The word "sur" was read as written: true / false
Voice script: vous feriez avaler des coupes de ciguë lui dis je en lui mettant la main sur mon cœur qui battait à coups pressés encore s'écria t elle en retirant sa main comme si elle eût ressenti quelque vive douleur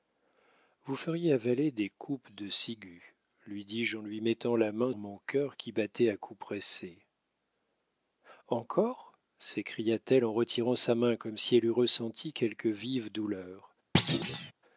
false